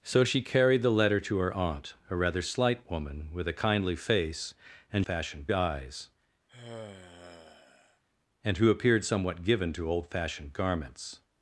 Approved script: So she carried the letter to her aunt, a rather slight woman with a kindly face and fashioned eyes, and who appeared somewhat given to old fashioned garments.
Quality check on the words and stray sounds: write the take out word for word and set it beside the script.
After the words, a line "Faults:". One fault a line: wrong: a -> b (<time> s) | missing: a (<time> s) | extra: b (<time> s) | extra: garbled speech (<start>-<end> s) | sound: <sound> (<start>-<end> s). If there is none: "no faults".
So she carried the letter to her aunt, a rather slight woman with a kindly face and fashioned eyes, and who appeared somewhat given to old fashioned garments.
Faults:
sound: sigh (6.5-8.0 s)